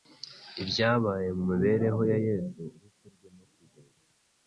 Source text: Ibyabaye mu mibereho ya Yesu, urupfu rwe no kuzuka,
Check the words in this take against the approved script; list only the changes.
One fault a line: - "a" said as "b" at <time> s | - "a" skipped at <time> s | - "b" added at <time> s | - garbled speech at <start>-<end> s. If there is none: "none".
none